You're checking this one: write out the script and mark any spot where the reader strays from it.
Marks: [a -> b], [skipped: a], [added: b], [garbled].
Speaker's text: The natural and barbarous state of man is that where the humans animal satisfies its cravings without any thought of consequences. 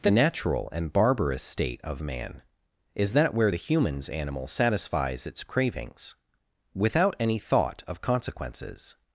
The natural and barbarous state of man is that where the humans animal satisfies its cravings without any thought of consequences.